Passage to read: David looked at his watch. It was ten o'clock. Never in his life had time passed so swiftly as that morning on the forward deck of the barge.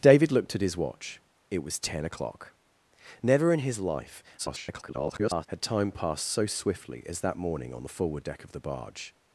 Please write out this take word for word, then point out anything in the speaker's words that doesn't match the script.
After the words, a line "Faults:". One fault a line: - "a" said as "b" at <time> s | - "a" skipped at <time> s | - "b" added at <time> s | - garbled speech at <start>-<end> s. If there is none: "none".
David looked at his watch. It was ten o'clock. Never in his life [garbled] had time passed so swiftly as that morning on the forward deck of the barge.
Faults:
- garbled speech at 4.4-5.5 s